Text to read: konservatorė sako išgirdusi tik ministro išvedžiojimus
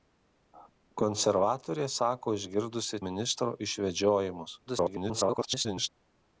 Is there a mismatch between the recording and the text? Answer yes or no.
yes